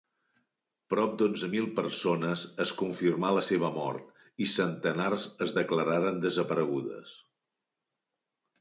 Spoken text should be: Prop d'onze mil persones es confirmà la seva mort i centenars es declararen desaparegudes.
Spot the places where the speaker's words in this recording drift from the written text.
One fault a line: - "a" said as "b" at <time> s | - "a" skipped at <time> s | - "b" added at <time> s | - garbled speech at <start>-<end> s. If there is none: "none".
none